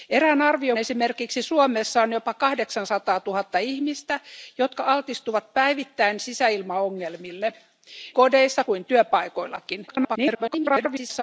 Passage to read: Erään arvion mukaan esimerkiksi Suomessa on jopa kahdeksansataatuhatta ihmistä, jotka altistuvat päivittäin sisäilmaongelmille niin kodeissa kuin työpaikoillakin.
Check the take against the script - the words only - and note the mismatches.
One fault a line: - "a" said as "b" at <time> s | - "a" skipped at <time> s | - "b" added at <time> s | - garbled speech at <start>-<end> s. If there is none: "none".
- "mukaan" skipped at 0.8 s
- "niin" skipped at 7.5 s
- garbled speech at 9.9-11.2 s